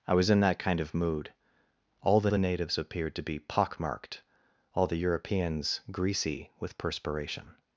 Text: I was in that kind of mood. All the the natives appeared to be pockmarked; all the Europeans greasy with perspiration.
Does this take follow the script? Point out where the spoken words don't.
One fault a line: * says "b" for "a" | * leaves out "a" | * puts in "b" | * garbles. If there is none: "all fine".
all fine